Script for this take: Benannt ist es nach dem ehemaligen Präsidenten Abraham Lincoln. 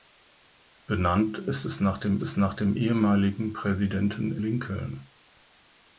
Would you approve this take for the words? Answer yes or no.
no